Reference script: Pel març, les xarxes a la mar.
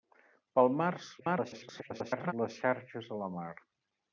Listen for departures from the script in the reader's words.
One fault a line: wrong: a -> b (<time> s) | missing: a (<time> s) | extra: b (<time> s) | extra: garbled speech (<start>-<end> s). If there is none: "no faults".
extra: garbled speech (1.2-2.3 s)